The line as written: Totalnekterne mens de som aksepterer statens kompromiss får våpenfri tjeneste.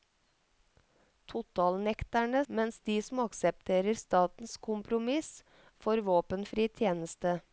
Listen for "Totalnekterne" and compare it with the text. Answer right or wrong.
right